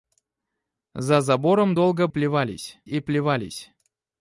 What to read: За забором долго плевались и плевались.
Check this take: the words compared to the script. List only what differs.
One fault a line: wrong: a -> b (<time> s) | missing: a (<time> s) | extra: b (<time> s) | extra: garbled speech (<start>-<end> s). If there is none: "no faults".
no faults